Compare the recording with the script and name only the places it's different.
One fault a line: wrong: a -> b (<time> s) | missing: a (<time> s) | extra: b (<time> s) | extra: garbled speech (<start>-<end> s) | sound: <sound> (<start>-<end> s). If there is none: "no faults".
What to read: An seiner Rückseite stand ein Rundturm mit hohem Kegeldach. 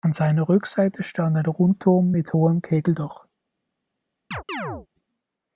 sound: chirp (4.3-4.9 s)